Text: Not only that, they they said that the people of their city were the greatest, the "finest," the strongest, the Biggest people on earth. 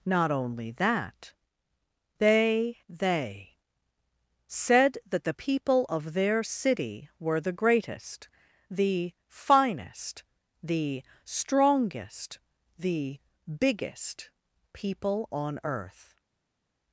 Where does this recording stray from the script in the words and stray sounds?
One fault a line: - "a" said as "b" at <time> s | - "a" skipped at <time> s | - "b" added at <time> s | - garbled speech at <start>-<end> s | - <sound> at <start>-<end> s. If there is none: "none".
none